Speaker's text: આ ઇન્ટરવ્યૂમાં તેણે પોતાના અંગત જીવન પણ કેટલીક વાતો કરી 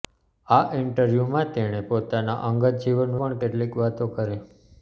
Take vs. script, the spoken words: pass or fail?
pass